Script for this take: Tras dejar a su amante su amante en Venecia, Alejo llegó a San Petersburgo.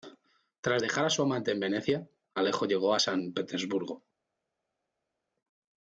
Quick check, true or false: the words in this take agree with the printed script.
false